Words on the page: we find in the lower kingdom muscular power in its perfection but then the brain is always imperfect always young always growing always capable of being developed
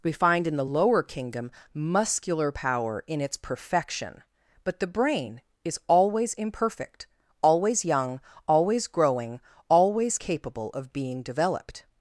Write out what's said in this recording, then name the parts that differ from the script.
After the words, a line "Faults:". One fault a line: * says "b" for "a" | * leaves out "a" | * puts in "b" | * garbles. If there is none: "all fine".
we find in the lower kingdom muscular power in its perfection but the brain is always imperfect always young always growing always capable of being developed
Faults:
* leaves out "then"